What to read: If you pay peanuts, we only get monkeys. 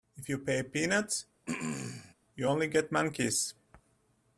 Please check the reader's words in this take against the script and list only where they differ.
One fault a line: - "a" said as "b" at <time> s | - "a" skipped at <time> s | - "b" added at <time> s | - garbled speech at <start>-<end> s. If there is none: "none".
- "we" said as "you" at 2.3 s